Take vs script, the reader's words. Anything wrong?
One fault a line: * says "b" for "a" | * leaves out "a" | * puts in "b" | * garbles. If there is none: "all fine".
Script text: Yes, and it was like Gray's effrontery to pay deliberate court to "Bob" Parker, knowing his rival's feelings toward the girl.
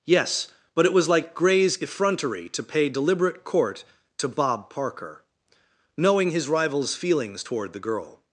* says "but" for "and"